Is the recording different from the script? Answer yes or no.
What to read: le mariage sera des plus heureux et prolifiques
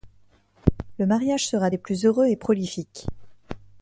no